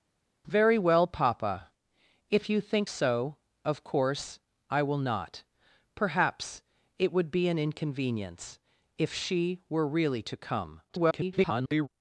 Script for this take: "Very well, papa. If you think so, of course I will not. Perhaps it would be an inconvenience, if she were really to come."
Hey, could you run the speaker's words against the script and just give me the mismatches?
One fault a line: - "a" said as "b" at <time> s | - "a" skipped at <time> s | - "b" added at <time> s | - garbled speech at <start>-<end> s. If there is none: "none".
- garbled speech at 10.9-11.9 s